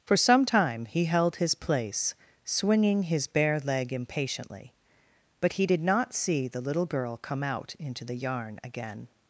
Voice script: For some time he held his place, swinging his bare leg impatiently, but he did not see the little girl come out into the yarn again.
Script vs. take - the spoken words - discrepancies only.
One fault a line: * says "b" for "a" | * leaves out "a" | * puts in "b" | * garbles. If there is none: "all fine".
all fine